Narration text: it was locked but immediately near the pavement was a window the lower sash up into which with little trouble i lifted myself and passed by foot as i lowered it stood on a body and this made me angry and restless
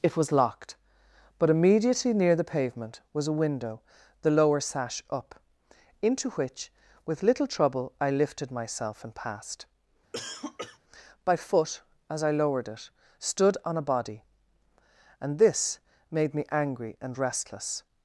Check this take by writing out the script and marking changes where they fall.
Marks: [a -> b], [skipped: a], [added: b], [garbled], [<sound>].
it was locked but immediately near the pavement was a window the lower sash up into which with little trouble i lifted myself and passed [cough] by foot as i lowered it stood on a body and this made me angry and restless